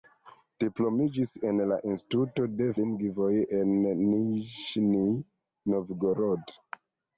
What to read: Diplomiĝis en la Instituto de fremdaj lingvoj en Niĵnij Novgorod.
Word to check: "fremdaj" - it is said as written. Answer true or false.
false